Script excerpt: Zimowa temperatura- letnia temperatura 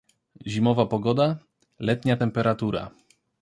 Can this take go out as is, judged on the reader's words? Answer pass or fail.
fail